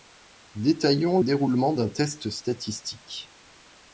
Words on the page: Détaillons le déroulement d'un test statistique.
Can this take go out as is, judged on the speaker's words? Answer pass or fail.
fail